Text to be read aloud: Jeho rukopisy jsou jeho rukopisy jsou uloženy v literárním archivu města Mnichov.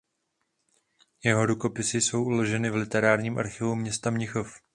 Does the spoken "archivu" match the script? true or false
true